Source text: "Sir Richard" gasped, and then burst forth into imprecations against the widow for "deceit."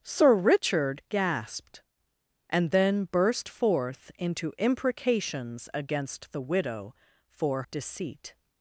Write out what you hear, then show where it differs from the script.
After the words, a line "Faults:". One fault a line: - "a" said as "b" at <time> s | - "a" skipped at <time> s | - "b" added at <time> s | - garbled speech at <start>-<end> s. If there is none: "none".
"Sir Richard" gasped, and then burst forth into imprecations against the widow for "deceit."
Faults:
none